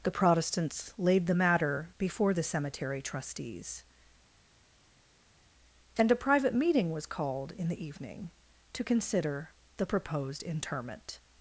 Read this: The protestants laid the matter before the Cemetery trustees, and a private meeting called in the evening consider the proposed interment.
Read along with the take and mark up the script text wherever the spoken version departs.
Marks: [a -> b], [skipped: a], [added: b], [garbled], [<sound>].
The protestants laid the matter before the Cemetery trustees, and a private meeting [added: was] called in the evening [added: to] consider the proposed interment.